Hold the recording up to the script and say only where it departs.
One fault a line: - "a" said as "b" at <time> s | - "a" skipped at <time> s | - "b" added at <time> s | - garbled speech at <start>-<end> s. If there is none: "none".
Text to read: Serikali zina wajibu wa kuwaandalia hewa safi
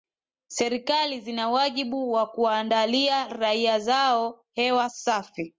- "raia zao" added at 3.3 s